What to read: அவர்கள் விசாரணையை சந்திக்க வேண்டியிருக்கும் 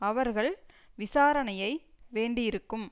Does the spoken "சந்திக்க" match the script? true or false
false